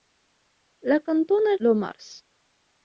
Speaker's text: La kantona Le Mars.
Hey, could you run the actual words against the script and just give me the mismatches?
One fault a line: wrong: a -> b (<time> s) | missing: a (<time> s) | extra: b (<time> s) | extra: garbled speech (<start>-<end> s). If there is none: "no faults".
no faults